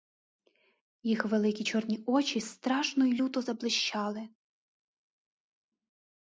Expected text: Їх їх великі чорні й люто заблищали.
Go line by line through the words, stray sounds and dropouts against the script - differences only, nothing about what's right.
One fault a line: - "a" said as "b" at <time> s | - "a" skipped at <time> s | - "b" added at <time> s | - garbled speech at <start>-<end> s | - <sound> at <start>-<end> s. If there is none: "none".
- "їх" skipped at 1.2 s
- "очі страшно" added at 2.1 s